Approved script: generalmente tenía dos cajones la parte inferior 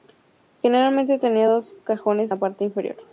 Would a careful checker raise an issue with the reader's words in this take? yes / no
no